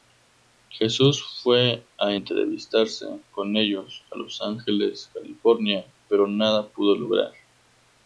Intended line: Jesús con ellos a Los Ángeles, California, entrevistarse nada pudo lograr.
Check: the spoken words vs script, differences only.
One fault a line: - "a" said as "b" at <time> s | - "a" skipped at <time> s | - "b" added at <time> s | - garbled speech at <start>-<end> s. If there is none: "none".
- "fue a entrevistarse" added at 1.4 s
- "entrevistarse" said as "pero" at 6.1 s